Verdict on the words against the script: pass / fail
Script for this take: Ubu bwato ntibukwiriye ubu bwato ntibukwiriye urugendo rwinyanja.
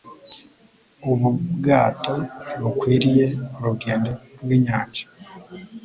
fail